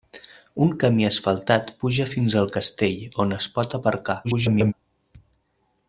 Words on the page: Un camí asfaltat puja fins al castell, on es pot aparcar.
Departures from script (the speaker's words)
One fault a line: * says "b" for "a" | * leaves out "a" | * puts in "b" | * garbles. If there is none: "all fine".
* garbles